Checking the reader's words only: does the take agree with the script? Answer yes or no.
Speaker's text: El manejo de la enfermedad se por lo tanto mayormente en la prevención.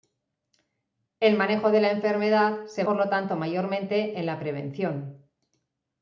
yes